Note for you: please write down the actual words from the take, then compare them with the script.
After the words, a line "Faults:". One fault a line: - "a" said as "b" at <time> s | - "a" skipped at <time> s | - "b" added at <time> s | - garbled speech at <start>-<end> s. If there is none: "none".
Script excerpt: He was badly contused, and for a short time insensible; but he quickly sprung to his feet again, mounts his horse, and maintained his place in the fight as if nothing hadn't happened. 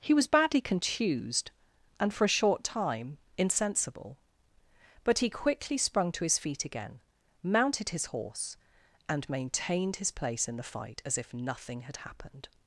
He was badly contused, and for a short time insensible; but he quickly sprung to his feet again, mounted his horse, and maintained his place in the fight as if nothing had happened.
Faults:
- "mounts" said as "mounted" at 7.4 s
- "hadn't" said as "had" at 11.8 s